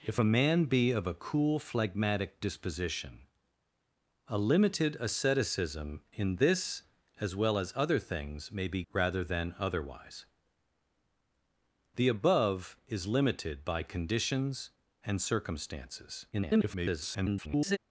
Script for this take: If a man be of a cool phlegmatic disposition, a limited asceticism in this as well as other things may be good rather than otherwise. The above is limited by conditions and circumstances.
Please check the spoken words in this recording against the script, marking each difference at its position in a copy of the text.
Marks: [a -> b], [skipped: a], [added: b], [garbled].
If a man be of a cool phlegmatic disposition, a limited asceticism in this as well as other things may be [skipped: good] rather than otherwise. The above is limited by conditions and circumstances. [garbled]